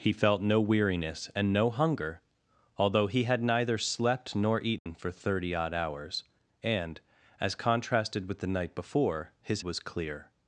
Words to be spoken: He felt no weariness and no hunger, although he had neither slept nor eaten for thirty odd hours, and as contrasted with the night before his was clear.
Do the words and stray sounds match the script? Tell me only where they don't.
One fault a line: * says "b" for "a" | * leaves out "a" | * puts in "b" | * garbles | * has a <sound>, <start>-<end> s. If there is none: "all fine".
* has a dropout, 4.8-4.9 s